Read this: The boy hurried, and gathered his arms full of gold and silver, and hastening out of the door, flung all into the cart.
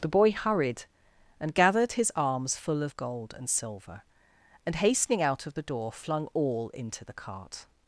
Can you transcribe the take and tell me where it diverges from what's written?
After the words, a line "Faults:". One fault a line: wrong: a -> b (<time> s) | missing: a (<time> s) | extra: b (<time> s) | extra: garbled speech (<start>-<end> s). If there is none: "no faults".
The boy hurried, and gathered his arms full of gold and silver, and hastening out of the door, flung all into the cart.
Faults:
no faults